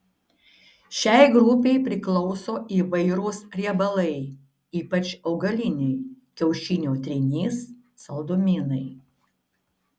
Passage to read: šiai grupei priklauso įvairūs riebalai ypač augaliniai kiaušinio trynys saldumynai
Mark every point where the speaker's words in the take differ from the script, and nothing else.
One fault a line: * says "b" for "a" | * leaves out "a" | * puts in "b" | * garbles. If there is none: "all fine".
all fine